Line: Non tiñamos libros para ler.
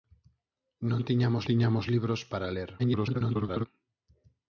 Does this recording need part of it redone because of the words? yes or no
yes